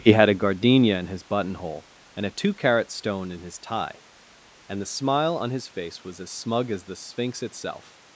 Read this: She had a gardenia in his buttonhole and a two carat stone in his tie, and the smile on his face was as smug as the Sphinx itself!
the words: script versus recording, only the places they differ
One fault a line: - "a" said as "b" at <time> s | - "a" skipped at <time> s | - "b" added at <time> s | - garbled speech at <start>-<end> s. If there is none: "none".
- "She" said as "He" at 0.0 s